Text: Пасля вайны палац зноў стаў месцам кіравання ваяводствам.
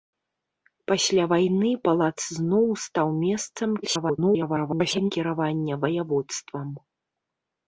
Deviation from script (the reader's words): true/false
true